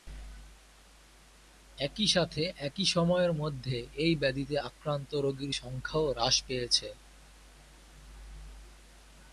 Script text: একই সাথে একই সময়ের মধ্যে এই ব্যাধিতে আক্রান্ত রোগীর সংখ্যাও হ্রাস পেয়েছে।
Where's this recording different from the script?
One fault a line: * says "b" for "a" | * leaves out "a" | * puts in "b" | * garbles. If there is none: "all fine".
all fine